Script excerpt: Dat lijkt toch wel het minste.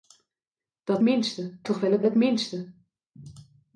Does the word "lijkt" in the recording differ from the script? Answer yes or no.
yes